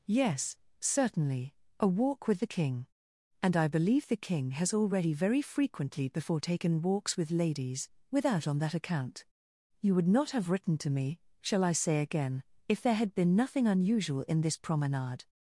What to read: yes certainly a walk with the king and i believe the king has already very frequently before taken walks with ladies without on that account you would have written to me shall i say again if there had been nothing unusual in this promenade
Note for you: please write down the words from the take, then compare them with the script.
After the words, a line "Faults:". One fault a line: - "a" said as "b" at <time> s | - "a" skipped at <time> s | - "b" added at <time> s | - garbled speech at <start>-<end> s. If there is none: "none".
yes certainly a walk with the king and i believe the king has already very frequently before taken walks with ladies without on that account you would not have written to me shall i say again if there had been nothing unusual in this promenade
Faults:
- "not" added at 10.1 s